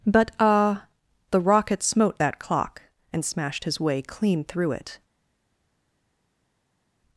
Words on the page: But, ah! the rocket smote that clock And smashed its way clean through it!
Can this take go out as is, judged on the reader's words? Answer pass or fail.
fail